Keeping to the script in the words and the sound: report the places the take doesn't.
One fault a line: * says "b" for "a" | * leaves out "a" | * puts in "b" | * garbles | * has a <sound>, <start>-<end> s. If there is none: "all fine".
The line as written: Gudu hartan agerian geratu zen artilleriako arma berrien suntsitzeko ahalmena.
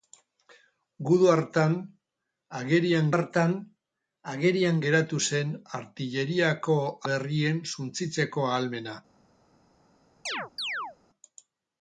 * puts in "hartan agerian"
* leaves out "arma"
* has a chirp, 10.3-11.0 s